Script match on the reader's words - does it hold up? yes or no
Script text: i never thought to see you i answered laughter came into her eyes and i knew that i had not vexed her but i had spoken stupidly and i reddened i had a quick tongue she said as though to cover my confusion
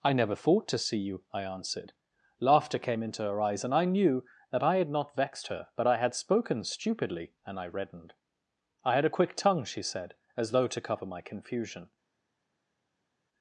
yes